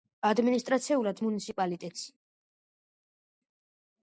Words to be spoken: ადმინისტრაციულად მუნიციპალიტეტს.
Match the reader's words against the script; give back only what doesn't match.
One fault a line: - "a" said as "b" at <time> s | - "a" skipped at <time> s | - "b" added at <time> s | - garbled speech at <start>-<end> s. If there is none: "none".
none